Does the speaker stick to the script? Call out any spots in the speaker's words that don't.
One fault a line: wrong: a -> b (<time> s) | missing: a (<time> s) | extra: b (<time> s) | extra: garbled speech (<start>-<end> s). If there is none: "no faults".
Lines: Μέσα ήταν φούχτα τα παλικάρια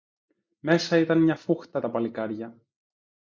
extra: μια (1.2 s)